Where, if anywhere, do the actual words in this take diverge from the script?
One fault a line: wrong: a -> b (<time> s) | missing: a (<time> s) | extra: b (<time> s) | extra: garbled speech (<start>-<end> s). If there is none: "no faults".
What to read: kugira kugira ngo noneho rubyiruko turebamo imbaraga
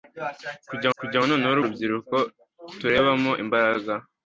no faults